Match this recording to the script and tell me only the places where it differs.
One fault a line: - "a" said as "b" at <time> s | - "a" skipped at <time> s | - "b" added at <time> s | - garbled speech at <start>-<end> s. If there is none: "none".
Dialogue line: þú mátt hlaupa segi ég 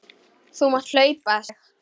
- "segi" skipped at 1.4 s